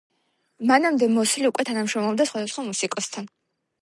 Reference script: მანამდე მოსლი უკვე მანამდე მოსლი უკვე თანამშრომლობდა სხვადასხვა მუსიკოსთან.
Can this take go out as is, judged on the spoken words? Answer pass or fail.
fail